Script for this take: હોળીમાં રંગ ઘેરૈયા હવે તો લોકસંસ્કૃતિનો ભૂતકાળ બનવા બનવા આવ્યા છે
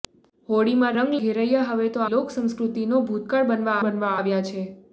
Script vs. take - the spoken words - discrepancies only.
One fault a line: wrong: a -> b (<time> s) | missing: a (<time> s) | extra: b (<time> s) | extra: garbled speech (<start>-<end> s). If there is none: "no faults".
no faults